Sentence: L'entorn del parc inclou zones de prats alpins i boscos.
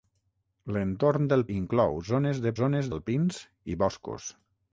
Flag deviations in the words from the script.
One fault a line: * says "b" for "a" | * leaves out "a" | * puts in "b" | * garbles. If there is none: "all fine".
* leaves out "parc"
* says "zones" for "prats"